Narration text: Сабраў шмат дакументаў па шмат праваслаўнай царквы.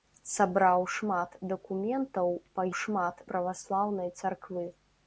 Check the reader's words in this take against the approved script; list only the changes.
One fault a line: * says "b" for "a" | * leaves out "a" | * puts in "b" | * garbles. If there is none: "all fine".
all fine